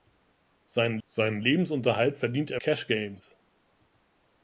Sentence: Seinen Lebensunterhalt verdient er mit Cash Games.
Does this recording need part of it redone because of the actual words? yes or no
yes